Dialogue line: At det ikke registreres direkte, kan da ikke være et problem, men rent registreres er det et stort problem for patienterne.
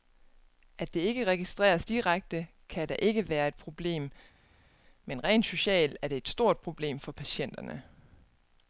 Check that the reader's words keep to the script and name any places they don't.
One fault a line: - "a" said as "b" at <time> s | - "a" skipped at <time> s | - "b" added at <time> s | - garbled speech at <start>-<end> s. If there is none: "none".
- "registreres" said as "socialt" at 5.4 s